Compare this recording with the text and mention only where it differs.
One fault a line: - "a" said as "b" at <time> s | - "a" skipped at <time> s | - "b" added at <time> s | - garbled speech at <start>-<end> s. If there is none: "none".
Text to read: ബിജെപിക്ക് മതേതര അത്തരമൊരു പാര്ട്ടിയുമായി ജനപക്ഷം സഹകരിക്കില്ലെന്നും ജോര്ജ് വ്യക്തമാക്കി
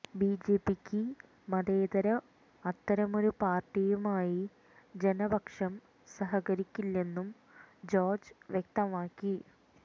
none